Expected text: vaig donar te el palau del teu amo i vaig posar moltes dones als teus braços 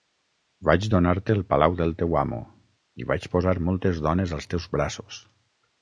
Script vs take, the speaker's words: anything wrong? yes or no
no